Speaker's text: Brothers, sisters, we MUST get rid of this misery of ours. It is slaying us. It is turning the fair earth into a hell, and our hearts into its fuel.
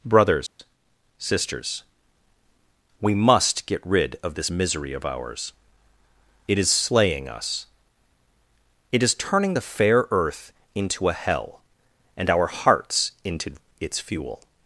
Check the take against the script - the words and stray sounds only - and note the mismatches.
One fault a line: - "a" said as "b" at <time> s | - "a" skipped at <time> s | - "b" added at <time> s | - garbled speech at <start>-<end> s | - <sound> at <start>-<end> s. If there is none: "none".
- dropout at 0.5-0.6 s